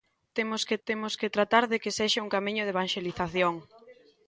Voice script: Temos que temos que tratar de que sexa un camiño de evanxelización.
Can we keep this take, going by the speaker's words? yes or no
yes